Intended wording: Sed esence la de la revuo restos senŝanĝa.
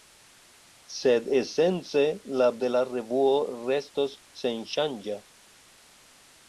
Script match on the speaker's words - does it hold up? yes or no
yes